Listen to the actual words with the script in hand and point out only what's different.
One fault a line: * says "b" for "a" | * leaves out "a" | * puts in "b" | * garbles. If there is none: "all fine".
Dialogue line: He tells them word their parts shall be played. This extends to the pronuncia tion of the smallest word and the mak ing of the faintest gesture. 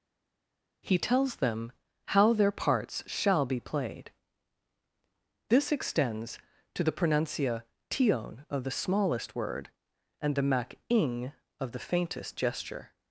* says "how" for "word"